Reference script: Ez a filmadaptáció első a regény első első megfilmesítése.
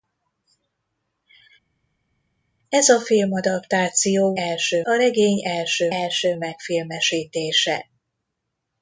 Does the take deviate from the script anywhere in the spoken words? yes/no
no